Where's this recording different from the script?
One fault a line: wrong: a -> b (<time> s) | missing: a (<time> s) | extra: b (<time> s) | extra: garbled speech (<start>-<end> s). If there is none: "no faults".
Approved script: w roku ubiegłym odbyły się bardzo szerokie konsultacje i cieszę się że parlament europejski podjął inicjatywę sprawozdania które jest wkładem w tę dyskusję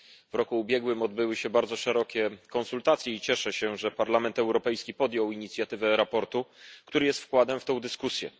no faults